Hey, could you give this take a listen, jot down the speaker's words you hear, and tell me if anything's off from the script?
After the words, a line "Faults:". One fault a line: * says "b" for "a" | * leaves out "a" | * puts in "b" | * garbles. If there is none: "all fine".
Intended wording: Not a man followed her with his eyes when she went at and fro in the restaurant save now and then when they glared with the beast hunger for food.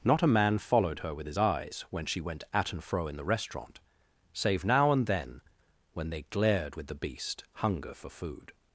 Not a man followed her with his eyes when she went at and fro in the restaurant save now and then when they glared with the beast hunger for food.
Faults:
all fine